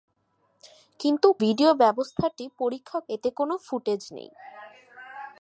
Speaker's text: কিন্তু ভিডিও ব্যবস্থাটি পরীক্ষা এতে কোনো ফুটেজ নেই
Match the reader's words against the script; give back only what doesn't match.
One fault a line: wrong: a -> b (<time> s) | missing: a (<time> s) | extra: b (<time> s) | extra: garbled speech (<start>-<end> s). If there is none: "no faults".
no faults